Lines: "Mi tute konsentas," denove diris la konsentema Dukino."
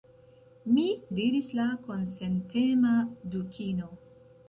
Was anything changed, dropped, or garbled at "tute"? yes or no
yes